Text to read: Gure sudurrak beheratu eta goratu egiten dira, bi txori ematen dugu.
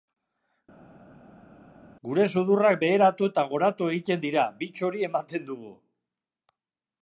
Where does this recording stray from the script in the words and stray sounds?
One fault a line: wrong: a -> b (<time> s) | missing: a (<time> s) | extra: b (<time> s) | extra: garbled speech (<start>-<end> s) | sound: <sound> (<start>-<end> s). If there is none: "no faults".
no faults